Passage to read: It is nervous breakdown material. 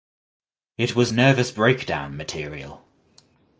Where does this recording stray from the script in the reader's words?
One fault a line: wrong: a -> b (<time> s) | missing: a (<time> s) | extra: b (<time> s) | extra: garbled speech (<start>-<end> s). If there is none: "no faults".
wrong: is -> was (0.9 s)